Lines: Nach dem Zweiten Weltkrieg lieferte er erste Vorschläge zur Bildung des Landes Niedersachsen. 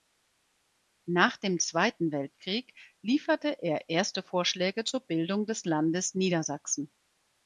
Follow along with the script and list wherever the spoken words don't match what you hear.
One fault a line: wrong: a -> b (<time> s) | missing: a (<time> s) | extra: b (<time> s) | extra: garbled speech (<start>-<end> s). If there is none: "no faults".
no faults